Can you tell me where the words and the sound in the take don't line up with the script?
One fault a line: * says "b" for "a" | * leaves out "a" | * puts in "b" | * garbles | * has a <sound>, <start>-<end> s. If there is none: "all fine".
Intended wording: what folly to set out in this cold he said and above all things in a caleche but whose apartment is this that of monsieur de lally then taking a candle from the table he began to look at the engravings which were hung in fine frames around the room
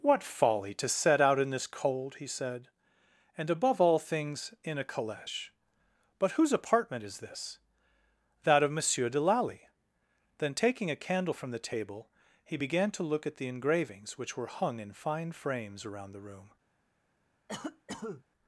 * has a cough, 17.5-18.2 s